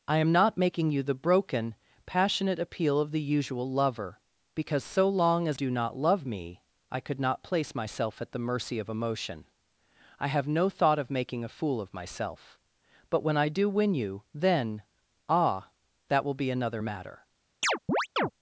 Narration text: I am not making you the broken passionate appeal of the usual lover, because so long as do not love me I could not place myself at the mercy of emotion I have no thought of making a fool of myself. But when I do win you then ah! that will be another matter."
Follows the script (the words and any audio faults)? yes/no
no